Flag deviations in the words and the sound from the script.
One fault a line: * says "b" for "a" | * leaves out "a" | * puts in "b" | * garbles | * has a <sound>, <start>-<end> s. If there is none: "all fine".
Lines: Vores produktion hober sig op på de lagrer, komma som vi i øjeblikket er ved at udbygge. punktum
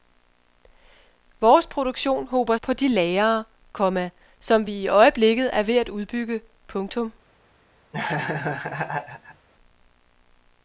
* leaves out "sig op"
* has a laugh, 7.9-9.5 s